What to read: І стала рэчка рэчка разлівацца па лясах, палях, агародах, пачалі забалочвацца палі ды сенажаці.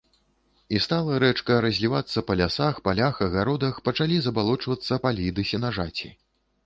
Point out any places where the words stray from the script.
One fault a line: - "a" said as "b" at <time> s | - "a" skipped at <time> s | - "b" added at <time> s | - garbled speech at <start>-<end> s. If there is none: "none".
- "рэчка" skipped at 1.6 s